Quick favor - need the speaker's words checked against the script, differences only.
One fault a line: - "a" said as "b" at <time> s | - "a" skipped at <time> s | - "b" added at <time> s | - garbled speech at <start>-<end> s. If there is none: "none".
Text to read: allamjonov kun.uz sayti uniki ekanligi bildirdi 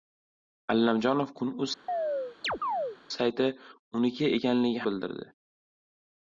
none